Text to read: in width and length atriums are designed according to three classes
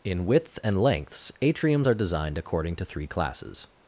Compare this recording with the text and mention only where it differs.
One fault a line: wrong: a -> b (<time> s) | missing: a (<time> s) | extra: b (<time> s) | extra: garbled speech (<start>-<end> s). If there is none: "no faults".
wrong: length -> lengths (0.8 s)